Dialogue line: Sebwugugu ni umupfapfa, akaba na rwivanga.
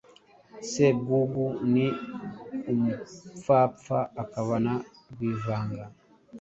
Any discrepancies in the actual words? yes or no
no